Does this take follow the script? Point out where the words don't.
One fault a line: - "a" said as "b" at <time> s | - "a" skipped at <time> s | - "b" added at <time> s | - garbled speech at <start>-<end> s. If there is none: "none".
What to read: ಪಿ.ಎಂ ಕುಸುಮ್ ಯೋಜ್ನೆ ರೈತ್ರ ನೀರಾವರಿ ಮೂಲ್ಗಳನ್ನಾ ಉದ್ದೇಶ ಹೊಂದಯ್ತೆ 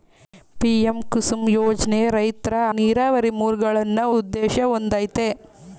none